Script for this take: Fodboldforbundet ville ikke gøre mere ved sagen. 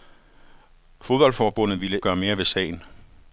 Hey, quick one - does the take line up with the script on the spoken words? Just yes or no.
no